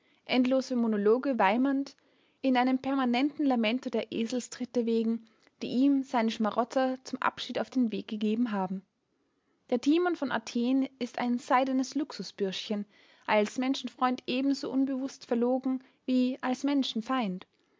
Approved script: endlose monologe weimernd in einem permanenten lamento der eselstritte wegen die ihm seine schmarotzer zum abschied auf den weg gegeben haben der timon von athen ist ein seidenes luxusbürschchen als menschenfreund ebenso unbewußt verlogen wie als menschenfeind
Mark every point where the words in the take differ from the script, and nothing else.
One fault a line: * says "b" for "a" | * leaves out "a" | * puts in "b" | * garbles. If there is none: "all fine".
all fine